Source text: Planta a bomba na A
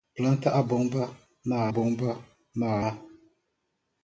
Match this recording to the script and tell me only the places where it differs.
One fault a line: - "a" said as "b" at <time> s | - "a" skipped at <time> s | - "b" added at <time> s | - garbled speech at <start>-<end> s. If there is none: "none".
- "bomba na" added at 1.7 s